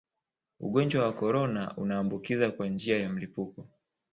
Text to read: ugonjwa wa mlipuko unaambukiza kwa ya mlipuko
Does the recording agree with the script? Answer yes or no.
no